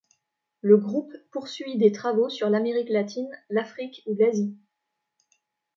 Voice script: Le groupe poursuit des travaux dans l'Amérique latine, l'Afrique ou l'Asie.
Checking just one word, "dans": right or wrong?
wrong